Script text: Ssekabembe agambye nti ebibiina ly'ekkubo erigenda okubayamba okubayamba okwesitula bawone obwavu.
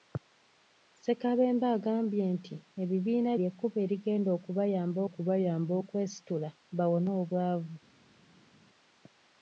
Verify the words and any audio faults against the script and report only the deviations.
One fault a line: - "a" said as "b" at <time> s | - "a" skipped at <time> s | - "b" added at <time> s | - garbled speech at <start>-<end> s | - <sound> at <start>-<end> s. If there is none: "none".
none